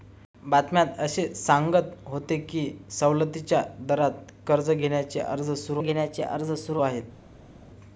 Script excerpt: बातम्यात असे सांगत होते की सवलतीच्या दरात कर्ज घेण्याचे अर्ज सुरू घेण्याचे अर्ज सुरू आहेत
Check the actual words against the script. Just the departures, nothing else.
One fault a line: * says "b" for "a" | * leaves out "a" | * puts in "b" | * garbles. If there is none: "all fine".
all fine